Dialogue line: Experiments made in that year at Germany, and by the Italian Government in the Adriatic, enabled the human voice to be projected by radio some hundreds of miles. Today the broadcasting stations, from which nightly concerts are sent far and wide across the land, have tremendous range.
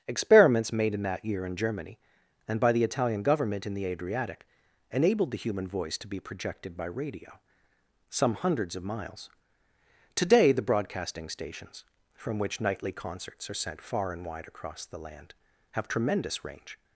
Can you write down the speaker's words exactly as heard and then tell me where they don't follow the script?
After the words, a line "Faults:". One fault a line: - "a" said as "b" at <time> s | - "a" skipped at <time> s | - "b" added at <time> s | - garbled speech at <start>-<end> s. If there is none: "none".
Experiments made in that year in Germany, and by the Italian Government in the Adriatic, enabled the human voice to be projected by radio some hundreds of miles. Today the broadcasting stations, from which nightly concerts are sent far and wide across the land, have tremendous range.
Faults:
- "at" said as "in" at 1.4 s